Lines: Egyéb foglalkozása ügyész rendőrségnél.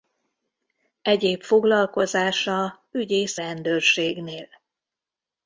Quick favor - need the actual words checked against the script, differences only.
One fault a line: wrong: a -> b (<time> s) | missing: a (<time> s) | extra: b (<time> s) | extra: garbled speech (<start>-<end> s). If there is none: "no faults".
no faults